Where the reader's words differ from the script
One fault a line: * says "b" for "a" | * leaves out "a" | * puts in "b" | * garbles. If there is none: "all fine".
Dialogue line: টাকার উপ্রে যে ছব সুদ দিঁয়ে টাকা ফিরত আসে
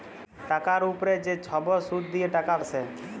* leaves out "ফিরত"